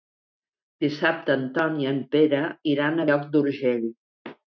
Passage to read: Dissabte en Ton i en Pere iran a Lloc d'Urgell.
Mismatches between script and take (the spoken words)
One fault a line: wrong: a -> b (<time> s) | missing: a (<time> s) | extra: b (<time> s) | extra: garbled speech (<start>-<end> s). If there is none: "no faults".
no faults